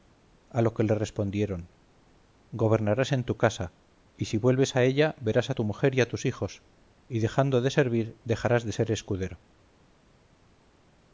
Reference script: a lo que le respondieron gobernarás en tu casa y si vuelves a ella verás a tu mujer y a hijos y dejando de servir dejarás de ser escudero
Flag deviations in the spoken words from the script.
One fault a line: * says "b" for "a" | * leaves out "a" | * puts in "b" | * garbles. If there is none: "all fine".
* puts in "tus"